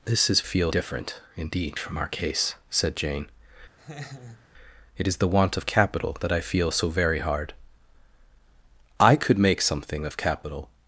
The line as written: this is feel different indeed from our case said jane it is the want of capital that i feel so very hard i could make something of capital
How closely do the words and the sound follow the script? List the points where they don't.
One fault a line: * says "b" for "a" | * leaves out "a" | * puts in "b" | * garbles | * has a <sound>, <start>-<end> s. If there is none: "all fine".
* has a laugh, 3.8-4.5 s